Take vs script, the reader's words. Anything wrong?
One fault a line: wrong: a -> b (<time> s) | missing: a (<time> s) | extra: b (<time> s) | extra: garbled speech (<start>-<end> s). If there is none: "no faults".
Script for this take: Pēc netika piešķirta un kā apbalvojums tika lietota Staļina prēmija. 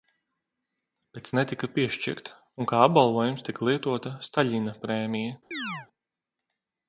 no faults